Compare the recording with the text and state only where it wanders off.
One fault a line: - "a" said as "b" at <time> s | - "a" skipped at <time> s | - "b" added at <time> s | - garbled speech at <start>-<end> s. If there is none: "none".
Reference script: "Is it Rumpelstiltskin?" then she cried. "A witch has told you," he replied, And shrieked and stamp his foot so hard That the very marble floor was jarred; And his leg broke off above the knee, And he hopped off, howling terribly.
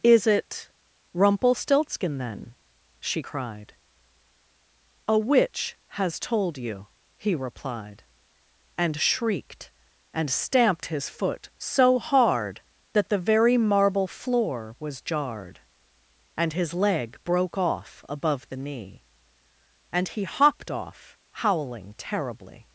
- "stamp" said as "stamped" at 10.3 s